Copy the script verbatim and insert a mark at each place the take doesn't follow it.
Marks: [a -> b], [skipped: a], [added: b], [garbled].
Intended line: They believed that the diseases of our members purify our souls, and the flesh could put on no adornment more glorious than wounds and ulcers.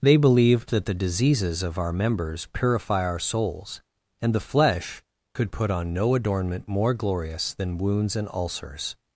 They believed that the diseases of our members purify our souls, and the flesh could put on no adornment more glorious than wounds and ulcers.